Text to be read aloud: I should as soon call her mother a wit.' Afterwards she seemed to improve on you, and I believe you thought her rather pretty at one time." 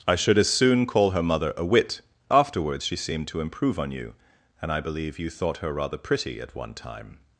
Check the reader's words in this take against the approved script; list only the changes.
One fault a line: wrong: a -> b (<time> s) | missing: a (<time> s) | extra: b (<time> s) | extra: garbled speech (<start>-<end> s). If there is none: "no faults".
no faults